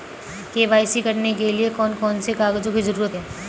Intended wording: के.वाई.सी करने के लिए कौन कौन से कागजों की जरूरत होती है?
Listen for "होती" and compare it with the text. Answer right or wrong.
wrong